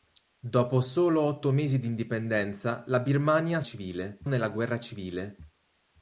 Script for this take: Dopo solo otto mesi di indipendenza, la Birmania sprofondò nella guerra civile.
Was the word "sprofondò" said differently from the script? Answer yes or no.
yes